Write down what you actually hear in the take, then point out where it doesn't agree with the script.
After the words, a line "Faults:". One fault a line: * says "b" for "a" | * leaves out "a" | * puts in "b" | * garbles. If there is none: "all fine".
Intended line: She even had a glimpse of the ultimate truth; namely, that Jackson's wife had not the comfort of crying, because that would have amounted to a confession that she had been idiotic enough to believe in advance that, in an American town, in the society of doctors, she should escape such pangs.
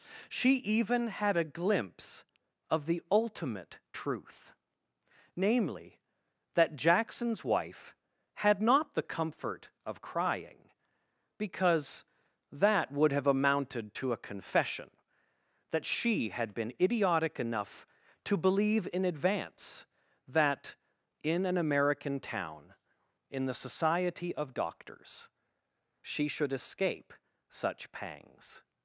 She even had a glimpse of the ultimate truth; namely, that Jackson's wife had not the comfort of crying, because that would have amounted to a confession that she had been idiotic enough to believe in advance that, in an American town, in the society of doctors, she should escape such pangs.
Faults:
all fine